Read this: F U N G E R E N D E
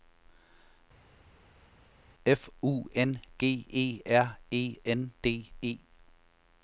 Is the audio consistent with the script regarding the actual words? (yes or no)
yes